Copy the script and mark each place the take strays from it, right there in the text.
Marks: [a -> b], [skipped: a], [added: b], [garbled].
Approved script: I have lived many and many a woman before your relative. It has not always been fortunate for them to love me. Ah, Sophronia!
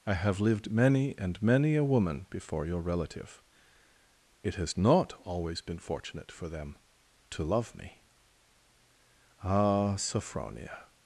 I have lived many and many a woman before your relative. It has not always been fortunate for them to love me. Ah, Sophronia!